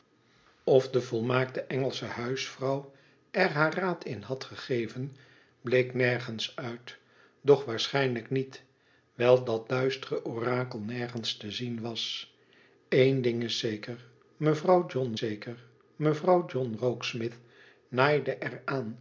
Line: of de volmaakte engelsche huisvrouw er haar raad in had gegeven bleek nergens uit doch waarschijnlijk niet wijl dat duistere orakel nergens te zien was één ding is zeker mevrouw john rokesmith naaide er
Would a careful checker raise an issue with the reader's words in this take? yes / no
yes